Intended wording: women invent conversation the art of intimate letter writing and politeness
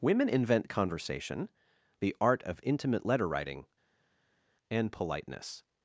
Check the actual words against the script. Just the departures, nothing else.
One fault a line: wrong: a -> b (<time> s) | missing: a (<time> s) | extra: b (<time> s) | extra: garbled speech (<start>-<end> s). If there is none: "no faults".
no faults